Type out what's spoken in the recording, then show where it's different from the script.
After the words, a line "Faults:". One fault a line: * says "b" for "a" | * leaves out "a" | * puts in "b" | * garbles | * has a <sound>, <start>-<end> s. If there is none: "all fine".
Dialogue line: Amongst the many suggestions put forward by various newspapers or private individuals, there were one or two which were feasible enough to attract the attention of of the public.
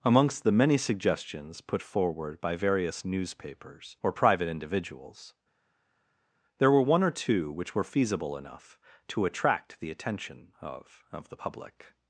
Amongst the many suggestions put forward by various newspapers or private individuals, there were one or two which were feasible enough to attract the attention of of the public.
Faults:
all fine